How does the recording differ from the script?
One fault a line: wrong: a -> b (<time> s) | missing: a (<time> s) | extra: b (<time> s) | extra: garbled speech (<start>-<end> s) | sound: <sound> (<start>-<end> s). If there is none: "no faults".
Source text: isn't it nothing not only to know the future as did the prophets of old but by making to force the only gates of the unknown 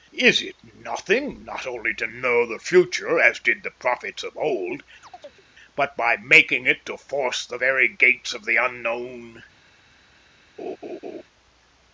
wrong: isn't -> is (0.2 s)
sound: chirp (5.0-5.4 s)
extra: it (6.6 s)
wrong: only -> very (7.6 s)
sound: laugh (10.6-11.2 s)